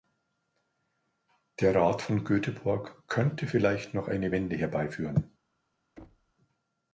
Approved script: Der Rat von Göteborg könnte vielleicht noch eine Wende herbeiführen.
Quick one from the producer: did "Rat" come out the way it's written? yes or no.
yes